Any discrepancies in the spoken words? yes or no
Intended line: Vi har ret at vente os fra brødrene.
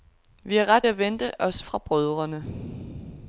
no